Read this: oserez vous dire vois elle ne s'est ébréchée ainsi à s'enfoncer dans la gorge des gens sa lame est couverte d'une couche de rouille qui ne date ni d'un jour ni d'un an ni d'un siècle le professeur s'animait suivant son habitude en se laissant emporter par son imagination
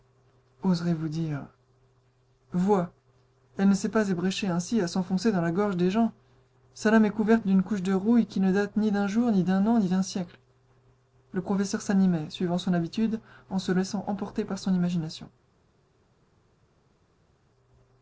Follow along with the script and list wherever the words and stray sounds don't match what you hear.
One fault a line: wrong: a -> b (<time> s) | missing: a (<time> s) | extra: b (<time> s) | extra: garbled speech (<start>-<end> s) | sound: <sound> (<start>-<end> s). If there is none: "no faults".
extra: pas (3.9 s)